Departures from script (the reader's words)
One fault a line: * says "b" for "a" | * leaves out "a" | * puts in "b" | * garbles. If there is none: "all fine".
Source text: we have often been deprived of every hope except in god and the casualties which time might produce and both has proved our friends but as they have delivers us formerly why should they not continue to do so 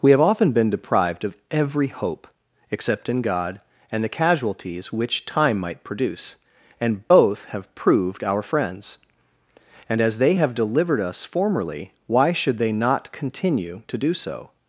* says "have" for "has"
* says "and" for "but"
* says "delivered" for "delivers"